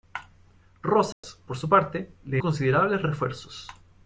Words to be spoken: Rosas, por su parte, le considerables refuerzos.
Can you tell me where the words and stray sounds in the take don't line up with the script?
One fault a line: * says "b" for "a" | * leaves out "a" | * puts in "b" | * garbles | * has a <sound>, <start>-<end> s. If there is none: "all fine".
* has a dropout, 1.1-1.2 s